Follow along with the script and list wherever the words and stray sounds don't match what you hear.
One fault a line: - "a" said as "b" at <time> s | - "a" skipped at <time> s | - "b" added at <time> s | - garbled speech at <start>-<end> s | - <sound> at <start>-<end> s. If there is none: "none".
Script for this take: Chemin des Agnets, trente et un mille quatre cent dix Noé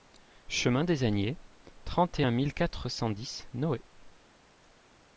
none